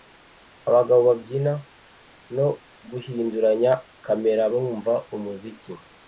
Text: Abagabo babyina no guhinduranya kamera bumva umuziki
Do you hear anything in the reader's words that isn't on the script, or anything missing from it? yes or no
no